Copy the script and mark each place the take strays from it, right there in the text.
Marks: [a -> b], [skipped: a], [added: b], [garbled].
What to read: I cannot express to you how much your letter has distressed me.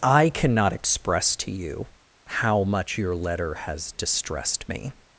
I cannot express to you how much your letter has distressed me.